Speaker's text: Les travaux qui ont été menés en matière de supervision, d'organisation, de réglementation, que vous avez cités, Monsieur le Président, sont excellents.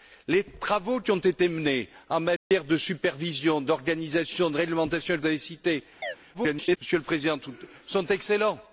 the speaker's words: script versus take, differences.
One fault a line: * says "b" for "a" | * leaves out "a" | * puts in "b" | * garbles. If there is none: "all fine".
* leaves out "vous"
* garbles